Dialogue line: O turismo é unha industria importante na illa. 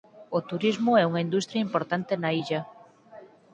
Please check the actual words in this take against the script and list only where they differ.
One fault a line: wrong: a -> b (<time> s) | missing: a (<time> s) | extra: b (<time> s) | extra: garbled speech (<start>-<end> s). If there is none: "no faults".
no faults